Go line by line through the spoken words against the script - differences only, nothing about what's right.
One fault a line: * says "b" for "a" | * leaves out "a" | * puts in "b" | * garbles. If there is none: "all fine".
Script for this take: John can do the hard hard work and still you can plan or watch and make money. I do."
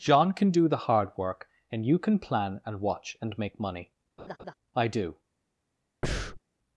* leaves out "hard"
* leaves out "still"
* says "and" for "or"